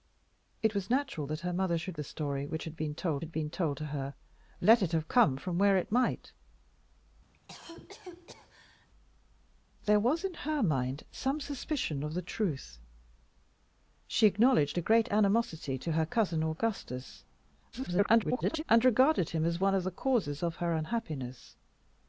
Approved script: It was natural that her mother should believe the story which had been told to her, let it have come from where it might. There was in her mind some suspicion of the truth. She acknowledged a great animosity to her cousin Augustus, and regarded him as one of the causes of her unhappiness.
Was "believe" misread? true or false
true